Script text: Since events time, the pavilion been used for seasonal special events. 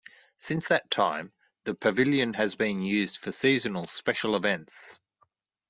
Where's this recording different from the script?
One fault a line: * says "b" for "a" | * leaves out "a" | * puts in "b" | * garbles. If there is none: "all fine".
* says "that" for "events"
* puts in "has"